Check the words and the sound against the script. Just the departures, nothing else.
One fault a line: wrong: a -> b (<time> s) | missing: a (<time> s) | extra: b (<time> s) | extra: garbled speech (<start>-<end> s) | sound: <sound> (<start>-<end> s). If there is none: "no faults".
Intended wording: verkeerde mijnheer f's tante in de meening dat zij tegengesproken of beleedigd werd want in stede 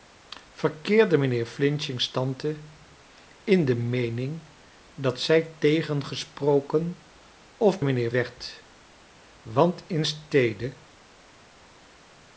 wrong: beleedigd -> mijnheer (7.8 s)